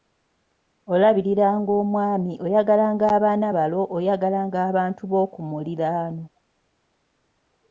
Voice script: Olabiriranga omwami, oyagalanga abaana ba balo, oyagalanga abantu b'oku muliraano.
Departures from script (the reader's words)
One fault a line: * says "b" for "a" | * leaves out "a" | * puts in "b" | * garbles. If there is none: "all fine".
* leaves out "ba"